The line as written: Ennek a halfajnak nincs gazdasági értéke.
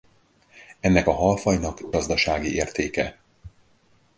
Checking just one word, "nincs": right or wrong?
wrong